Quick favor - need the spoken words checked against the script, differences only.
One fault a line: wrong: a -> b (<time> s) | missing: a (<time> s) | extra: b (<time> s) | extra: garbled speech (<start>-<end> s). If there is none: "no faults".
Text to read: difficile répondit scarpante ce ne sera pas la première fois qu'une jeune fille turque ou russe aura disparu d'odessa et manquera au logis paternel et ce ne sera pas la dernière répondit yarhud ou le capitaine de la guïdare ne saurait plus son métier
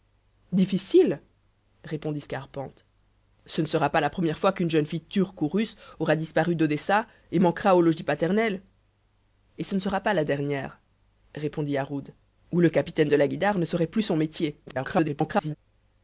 extra: garbled speech (14.7-15.6 s)